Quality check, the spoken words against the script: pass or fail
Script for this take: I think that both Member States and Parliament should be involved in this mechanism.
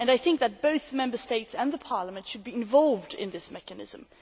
pass